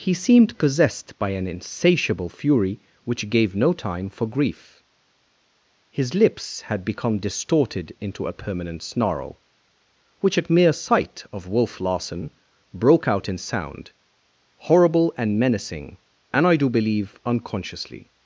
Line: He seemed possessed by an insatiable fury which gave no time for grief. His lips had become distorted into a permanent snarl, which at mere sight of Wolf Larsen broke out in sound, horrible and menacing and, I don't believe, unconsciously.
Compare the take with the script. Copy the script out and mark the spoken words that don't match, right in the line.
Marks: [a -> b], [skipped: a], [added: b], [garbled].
He seemed possessed by an insatiable fury which gave no time for grief. His lips had become distorted into a permanent snarl, which at mere sight of Wolf Larsen broke out in sound, horrible and menacing and, I [don't -> do] believe, unconsciously.